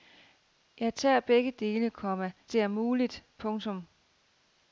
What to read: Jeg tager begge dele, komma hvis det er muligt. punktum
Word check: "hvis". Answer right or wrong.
wrong